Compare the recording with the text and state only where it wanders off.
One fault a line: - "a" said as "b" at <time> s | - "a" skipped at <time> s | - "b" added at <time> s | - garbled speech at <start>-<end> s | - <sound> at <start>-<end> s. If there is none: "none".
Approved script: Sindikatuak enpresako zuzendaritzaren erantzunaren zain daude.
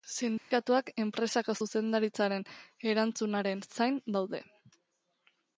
- dropout at 0.4-0.5 s